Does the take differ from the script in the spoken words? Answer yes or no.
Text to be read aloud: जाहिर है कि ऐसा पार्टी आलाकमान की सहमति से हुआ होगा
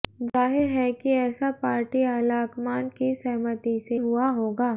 no